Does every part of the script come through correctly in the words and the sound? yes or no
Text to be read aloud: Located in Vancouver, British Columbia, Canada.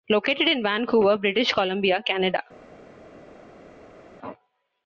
yes